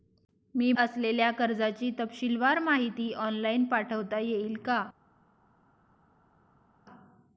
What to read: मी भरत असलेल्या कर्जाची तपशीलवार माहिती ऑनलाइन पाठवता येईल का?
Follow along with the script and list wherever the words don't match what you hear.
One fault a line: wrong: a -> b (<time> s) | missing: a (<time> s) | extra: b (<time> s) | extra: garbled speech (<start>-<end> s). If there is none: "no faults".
missing: भरत (0.7 s)